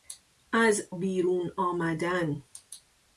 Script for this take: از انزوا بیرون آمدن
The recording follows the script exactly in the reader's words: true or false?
false